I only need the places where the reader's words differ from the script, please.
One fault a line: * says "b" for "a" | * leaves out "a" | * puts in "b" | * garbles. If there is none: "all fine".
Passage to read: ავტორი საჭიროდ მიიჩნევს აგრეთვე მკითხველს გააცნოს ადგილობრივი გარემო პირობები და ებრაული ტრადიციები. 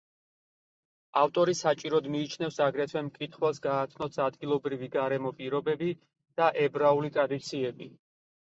all fine